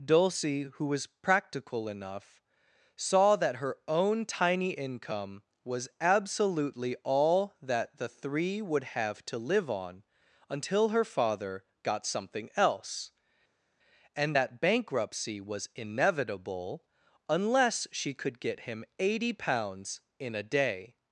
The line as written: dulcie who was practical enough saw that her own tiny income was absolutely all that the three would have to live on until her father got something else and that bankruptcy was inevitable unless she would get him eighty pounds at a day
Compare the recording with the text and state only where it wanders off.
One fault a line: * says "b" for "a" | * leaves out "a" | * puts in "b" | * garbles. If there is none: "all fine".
* says "could" for "would"
* says "in" for "at"